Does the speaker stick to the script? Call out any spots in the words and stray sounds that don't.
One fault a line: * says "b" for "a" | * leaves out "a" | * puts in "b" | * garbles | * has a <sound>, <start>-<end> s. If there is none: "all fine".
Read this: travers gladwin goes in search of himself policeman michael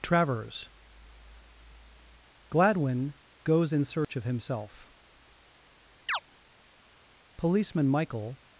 * has a dropout, 4.0-4.1 s
* has a chirp, 6.1-6.2 s